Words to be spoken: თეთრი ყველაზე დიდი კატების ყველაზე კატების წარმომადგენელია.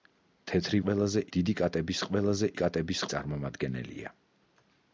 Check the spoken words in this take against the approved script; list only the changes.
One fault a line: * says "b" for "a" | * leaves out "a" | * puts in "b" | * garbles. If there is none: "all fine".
all fine